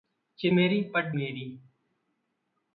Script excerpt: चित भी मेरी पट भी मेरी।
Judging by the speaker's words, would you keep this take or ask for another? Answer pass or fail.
fail